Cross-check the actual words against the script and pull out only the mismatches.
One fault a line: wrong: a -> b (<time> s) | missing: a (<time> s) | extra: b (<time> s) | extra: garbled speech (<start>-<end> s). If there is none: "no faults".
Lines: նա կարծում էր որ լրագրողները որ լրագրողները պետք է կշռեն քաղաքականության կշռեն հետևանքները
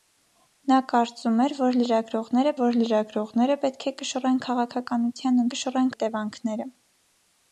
no faults